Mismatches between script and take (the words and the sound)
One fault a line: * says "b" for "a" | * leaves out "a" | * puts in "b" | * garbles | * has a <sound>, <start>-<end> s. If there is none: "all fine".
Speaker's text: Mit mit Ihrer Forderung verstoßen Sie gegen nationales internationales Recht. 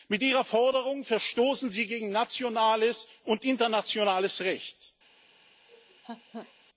* leaves out "mit"
* puts in "und"
* has a laugh, 5.7-6.5 s